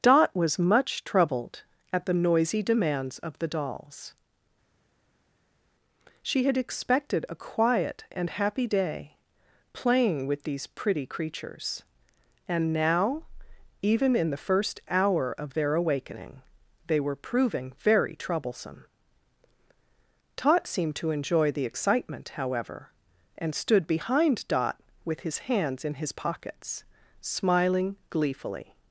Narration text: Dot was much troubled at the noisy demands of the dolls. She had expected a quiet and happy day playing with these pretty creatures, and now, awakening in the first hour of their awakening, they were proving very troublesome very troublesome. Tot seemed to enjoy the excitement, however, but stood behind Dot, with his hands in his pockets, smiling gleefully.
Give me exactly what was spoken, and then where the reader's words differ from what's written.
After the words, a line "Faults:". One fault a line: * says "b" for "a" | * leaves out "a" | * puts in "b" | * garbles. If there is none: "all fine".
Dot was much troubled at the noisy demands of the dolls. She had expected a quiet and happy day playing with these pretty creatures, and now, even in the first hour of their awakening, they were proving very troublesome. Tot seemed to enjoy the excitement, however, and stood behind Dot, with his hands in his pockets, smiling gleefully.
Faults:
* says "even" for "awakening"
* leaves out "very troublesome"
* says "and" for "but"